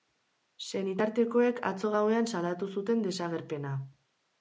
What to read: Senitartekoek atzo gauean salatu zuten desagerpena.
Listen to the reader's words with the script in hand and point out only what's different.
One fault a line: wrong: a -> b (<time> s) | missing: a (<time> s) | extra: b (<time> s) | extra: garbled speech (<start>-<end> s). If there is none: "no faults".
no faults